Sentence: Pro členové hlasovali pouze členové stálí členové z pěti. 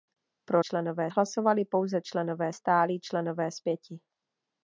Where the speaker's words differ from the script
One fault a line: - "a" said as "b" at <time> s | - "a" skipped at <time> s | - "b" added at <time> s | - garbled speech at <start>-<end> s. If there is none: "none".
none